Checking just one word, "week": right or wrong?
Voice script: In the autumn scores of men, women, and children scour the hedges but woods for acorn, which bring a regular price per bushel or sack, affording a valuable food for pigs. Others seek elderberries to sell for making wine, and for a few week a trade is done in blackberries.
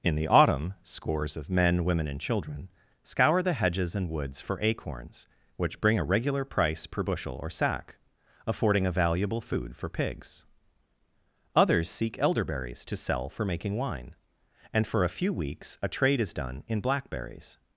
wrong